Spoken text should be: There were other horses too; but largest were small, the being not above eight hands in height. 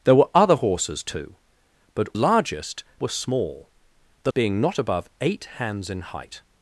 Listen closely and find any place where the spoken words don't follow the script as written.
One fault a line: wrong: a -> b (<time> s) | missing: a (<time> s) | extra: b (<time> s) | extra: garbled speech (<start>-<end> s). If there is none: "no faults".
no faults